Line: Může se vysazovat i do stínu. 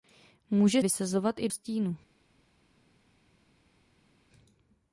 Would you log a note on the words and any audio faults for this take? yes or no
yes